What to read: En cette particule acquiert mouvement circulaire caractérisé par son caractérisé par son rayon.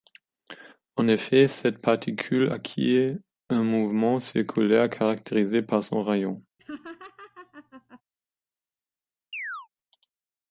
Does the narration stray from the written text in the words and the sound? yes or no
yes